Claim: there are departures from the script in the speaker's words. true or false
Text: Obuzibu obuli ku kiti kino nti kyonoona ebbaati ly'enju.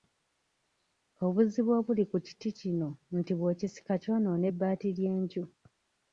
true